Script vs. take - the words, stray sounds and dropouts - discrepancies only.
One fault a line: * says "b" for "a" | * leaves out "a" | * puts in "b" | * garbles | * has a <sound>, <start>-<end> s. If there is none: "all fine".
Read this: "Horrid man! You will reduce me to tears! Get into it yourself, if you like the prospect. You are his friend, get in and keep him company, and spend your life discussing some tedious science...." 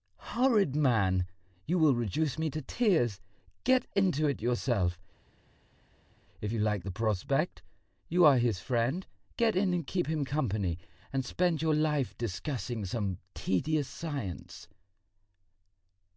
all fine